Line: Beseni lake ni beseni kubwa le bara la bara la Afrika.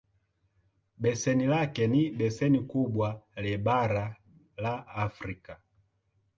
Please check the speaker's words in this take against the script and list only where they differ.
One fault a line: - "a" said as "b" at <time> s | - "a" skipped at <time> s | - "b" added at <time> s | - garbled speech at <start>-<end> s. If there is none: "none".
- "bara la" skipped at 4.9 s